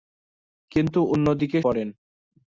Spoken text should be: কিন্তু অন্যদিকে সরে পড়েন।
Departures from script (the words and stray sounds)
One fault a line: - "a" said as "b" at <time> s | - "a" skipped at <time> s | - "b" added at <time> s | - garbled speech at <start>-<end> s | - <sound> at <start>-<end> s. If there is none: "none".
- "সরে" skipped at 1.6 s